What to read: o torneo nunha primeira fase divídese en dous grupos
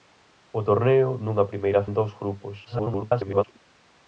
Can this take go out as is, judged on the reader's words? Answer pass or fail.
fail